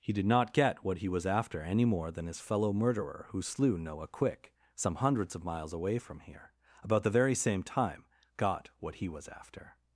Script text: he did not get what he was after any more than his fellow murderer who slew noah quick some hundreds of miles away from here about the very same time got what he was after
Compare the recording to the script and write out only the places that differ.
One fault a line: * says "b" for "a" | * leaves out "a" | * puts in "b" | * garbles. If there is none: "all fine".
all fine